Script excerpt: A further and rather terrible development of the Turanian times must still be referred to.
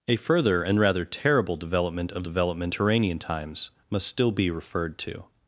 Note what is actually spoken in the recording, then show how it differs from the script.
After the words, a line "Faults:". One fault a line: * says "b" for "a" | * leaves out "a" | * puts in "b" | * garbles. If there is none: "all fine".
A further and rather terrible development of development Turanian times must still be referred to.
Faults:
* says "development" for "the"